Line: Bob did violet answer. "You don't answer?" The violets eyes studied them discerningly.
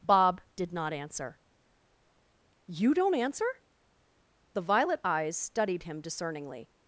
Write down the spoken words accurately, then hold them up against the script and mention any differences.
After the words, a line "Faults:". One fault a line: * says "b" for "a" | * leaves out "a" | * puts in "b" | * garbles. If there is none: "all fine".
Bob did not answer. "You don't answer?" The violet eyes studied him discerningly.
Faults:
* says "not" for "violet"
* says "violet" for "violets"
* says "him" for "them"